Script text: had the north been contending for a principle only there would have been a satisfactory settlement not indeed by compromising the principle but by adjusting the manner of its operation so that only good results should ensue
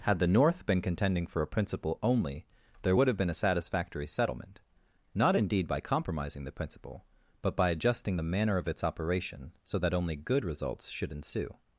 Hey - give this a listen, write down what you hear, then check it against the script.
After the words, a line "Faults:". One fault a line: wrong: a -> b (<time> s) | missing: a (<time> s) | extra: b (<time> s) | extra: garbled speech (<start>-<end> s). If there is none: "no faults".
had the north been contending for a principle only there would have been a satisfactory settlement not indeed by compromising the principle but by adjusting the manner of its operation so that only good results should ensue
Faults:
no faults